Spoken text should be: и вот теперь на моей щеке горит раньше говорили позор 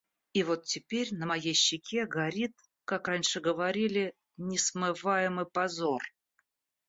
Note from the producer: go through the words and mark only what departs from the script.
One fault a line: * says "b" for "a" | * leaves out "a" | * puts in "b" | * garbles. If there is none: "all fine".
* puts in "как"
* puts in "несмываемый"